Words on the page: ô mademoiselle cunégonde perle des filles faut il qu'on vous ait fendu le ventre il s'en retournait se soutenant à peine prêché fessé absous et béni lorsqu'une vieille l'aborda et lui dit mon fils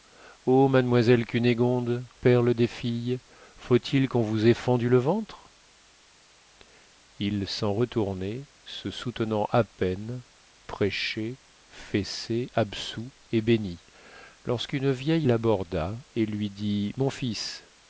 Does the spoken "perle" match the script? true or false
true